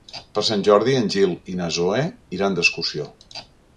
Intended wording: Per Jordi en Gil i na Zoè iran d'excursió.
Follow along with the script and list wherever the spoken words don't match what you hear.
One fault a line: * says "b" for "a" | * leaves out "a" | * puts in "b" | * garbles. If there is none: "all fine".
* puts in "Sant"